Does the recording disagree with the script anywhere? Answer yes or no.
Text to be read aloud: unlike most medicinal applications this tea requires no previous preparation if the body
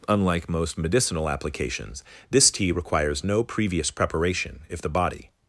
no